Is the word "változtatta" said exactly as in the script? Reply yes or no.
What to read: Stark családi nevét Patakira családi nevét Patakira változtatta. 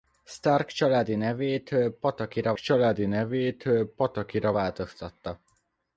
yes